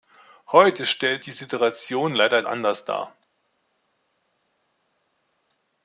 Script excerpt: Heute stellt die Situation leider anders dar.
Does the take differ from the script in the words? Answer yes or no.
no